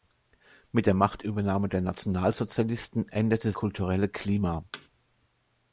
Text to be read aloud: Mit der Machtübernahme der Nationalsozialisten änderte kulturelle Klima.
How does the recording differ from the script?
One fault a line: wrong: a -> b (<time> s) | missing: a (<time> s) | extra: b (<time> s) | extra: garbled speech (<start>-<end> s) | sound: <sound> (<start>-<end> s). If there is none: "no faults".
sound: thud (4.7-4.9 s)